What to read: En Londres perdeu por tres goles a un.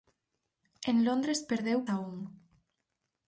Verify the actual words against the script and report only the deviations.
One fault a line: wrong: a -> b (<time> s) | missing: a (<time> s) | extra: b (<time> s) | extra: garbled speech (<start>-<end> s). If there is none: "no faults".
missing: por tres goles (1.8 s)